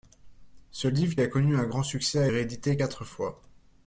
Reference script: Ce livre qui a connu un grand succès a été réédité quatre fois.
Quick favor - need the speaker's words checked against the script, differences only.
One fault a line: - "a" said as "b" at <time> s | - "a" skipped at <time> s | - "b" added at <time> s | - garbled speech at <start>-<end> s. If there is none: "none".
- "qui" skipped at 1.1 s
- "été" skipped at 2.3 s